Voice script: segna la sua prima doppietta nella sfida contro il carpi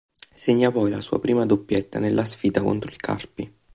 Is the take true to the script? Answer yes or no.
no